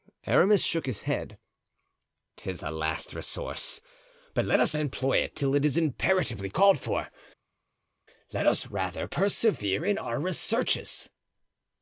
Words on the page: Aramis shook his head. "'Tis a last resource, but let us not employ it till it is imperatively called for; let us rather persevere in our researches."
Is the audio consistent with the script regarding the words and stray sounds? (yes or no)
no